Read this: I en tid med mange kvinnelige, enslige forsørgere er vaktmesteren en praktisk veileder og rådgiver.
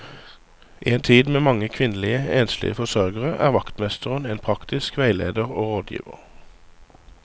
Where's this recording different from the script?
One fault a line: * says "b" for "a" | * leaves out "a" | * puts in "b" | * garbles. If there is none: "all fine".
all fine